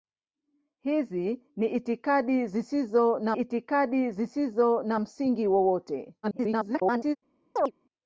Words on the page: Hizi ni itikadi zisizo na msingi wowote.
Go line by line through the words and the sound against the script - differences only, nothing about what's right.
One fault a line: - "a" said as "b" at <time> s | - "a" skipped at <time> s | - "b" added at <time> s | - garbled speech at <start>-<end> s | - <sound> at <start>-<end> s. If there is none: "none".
- "itikadi zisizo na" added at 3.3 s
- garbled speech at 6.2-7.2 s
- chirp at 7.6-7.7 s